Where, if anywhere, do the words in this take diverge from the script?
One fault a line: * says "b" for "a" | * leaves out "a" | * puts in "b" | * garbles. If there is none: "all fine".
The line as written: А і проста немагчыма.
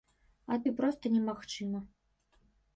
all fine